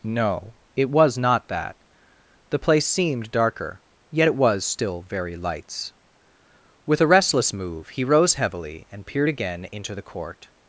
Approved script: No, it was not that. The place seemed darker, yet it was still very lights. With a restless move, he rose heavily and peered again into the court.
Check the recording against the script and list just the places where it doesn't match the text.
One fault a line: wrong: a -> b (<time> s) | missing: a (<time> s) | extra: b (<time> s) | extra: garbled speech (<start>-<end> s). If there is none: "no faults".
no faults